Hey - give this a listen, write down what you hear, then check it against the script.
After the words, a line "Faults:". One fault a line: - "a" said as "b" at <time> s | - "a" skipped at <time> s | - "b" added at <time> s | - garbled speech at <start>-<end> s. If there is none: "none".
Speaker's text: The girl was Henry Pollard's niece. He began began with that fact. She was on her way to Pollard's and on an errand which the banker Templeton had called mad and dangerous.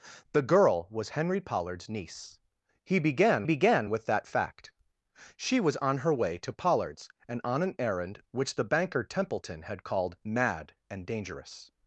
The girl was Henry Pollard's niece. He began began with that fact. She was on her way to Pollard's and on an errand which the banker Templeton had called mad and dangerous.
Faults:
none